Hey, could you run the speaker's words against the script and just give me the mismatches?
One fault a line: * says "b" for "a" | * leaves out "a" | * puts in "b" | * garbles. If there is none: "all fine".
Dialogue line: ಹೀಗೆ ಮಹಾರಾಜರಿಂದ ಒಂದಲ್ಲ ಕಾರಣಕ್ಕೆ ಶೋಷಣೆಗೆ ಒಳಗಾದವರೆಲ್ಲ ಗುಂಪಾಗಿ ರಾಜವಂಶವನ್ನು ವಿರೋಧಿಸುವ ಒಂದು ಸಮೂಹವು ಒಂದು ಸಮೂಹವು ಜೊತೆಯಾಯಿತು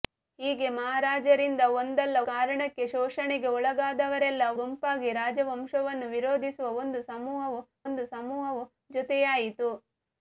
all fine